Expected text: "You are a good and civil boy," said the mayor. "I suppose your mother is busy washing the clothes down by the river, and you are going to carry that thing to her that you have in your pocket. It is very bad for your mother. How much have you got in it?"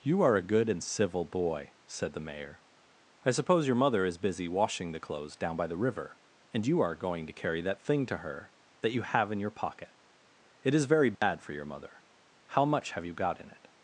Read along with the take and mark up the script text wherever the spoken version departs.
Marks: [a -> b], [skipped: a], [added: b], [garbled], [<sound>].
"You are a good and civil boy," said the mayor. "I suppose your mother is busy washing the clothes down by the river, and you are going to carry that thing to her that you have in your pocket. It is very bad [dropout] for your mother. How much have you got in it?"